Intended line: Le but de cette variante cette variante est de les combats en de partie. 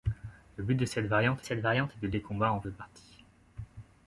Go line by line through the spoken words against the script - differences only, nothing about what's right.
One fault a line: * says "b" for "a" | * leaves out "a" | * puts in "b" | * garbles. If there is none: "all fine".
all fine